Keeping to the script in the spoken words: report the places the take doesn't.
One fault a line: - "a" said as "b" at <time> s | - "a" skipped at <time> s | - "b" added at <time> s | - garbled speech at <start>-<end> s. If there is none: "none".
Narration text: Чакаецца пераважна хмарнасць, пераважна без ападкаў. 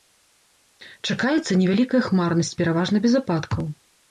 - "пераважна" said as "невялікая" at 1.6 s